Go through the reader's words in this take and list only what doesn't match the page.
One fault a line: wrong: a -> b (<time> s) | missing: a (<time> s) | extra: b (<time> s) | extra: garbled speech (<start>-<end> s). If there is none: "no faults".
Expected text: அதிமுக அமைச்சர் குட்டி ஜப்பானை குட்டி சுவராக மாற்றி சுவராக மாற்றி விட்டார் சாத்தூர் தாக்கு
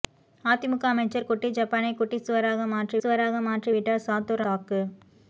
no faults